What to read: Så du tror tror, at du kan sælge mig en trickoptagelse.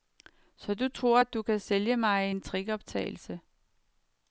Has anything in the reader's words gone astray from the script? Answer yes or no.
yes